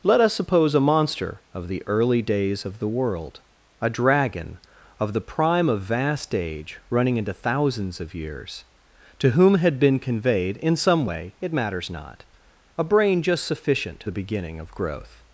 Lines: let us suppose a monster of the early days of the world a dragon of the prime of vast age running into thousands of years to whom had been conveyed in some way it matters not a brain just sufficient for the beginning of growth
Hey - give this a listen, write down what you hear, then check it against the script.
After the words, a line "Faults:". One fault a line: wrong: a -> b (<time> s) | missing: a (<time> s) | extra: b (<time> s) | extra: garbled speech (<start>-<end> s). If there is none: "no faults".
let us suppose a monster of the early days of the world a dragon of the prime of vast age running into thousands of years to whom had been conveyed in some way it matters not a brain just sufficient the beginning of growth
Faults:
missing: for (14.0 s)